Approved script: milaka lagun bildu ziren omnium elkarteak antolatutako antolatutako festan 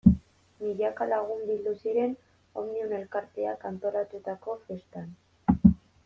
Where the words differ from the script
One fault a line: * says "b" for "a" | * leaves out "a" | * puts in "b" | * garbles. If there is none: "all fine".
* leaves out "antolatutako"